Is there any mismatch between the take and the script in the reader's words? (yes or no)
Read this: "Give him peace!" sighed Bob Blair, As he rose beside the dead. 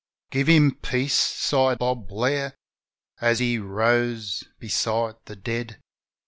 no